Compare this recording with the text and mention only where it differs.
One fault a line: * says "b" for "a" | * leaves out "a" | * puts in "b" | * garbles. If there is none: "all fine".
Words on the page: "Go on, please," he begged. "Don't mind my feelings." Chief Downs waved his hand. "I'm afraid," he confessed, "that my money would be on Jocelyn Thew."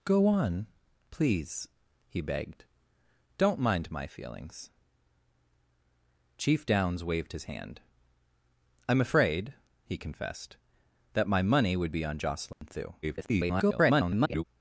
* garbles